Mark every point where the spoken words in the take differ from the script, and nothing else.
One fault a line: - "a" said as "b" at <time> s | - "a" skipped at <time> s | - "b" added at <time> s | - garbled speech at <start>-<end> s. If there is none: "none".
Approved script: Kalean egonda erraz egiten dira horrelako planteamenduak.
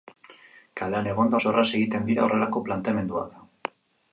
- "oso" added at 1.4 s